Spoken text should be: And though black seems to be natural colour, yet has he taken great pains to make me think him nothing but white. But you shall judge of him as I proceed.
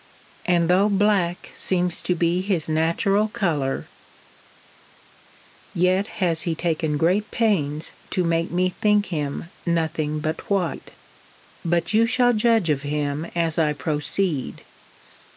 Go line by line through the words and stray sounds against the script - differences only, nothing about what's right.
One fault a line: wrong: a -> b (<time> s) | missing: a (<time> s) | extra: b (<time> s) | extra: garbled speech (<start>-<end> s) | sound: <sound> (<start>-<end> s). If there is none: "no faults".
extra: his (2.4 s)